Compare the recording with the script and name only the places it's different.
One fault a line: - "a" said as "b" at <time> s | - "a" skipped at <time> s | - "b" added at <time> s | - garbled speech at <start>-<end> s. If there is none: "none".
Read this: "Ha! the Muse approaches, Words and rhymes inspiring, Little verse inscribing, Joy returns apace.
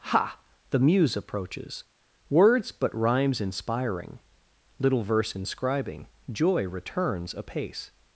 - "and" said as "but" at 2.7 s